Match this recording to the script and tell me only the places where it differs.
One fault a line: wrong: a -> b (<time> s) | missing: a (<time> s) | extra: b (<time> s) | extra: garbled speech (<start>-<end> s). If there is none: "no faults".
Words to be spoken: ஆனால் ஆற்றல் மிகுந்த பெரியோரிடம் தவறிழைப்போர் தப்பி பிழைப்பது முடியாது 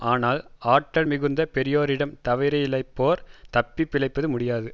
no faults